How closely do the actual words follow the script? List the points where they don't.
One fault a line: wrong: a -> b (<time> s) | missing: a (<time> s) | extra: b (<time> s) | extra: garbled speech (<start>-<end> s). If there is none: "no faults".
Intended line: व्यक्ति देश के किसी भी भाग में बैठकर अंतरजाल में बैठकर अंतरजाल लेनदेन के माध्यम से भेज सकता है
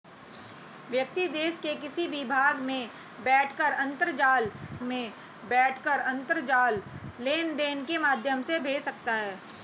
no faults